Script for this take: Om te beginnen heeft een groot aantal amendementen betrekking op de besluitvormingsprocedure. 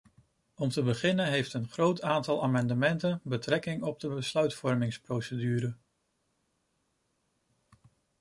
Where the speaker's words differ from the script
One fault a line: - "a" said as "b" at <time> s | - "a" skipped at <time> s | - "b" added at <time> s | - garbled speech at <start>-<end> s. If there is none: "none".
none